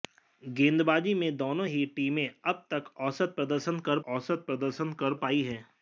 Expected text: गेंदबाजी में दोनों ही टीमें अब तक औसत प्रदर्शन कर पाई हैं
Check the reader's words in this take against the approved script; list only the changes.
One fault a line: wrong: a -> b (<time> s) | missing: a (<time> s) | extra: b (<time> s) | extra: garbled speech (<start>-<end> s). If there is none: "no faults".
extra: औसत प्रदर्शन कर (4.1 s)